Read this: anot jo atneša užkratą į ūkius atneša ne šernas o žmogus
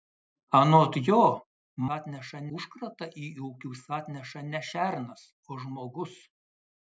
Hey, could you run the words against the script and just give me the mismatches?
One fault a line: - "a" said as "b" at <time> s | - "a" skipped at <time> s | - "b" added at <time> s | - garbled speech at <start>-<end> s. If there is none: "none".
none